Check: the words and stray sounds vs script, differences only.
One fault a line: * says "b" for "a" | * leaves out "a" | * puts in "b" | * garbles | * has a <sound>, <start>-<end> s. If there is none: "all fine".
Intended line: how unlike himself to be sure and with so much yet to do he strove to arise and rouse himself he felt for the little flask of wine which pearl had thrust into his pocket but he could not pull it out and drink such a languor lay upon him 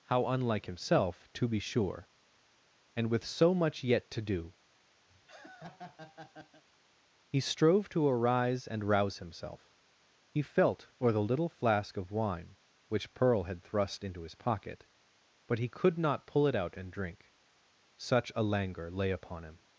* has a laugh, 5.1-6.6 s